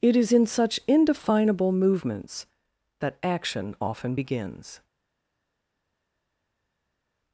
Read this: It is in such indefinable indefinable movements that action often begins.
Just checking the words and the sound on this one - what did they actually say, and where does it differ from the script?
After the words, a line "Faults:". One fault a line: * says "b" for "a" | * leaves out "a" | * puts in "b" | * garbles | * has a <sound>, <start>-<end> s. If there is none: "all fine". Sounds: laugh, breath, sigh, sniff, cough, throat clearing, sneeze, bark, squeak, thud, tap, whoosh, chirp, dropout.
It is in such indefinable movements that action often begins.
Faults:
* leaves out "indefinable"